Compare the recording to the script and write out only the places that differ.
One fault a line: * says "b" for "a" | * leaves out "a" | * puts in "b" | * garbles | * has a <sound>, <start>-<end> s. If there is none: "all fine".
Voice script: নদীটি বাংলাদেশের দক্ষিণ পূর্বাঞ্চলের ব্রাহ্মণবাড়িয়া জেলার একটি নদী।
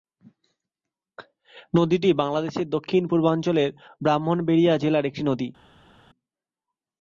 all fine